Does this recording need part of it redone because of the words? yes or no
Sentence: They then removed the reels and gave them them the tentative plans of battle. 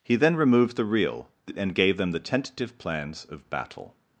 yes